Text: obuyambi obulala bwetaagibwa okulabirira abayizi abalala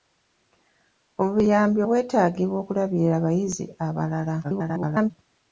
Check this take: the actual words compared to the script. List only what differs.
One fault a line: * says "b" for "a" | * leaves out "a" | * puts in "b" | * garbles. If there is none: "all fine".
* leaves out "obulala"
* garbles